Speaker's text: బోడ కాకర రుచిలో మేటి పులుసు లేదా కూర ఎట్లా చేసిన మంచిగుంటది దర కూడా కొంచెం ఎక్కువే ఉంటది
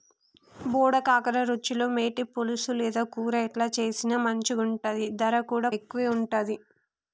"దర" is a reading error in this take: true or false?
false